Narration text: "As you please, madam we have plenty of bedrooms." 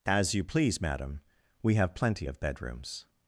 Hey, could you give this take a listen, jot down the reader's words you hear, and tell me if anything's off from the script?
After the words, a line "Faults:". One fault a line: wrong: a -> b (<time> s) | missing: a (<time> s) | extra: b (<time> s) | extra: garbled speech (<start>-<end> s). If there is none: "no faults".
"As you please, madam we have plenty of bedrooms."
Faults:
no faults